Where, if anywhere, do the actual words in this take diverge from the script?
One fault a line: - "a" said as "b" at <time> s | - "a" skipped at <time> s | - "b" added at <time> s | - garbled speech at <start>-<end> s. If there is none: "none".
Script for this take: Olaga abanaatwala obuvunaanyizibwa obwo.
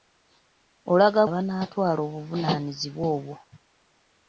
none